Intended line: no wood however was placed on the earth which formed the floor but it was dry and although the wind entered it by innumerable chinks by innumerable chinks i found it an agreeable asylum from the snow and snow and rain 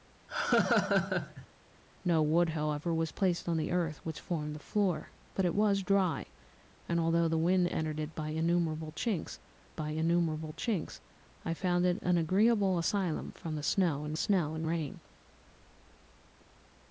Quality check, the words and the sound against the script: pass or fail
fail